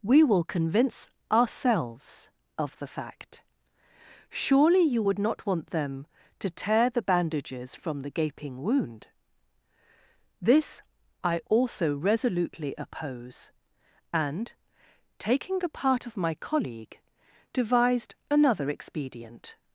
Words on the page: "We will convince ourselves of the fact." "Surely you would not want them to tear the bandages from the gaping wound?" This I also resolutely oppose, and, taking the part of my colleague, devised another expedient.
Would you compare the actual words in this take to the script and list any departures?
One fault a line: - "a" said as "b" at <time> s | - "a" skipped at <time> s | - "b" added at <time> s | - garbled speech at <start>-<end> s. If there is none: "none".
none